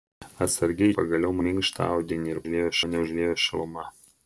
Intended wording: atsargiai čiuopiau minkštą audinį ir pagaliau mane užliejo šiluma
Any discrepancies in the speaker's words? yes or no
yes